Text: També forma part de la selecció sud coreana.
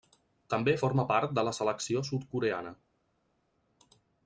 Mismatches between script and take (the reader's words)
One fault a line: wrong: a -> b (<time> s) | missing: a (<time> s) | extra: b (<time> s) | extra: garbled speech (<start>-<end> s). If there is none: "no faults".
no faults